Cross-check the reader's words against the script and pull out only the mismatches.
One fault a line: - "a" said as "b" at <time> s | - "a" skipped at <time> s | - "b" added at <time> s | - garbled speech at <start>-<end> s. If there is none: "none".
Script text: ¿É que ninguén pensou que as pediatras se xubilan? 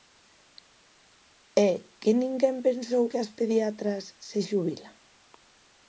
none